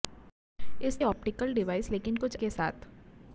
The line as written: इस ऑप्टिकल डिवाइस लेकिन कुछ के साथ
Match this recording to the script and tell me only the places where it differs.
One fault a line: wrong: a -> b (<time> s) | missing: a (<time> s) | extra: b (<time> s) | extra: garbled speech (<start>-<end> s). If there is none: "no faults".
no faults